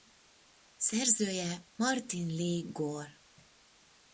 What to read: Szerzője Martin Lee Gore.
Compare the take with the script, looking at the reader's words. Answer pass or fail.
pass